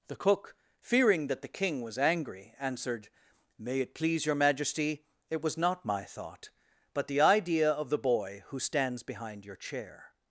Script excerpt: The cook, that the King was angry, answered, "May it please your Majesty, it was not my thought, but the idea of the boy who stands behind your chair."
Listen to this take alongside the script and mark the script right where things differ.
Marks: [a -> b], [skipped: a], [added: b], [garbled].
The cook, [added: fearing] that the King was angry, answered, "May it please your Majesty, it was not my thought, but the idea of the boy who stands behind your chair."